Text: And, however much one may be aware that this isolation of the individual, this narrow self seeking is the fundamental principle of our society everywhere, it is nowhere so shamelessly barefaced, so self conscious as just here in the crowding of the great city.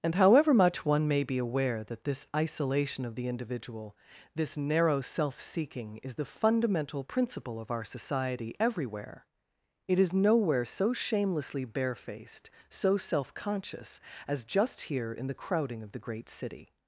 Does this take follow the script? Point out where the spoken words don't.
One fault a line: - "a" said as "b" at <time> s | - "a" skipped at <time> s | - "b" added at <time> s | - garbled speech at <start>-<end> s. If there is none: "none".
none